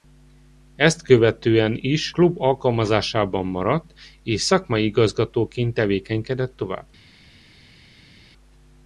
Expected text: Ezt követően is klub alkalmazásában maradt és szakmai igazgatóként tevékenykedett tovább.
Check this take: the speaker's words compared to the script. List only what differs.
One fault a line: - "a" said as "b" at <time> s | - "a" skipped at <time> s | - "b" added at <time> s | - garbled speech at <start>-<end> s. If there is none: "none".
none